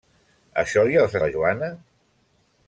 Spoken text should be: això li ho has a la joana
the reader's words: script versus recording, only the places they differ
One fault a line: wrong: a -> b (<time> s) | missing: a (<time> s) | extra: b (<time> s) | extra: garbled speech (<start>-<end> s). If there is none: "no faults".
no faults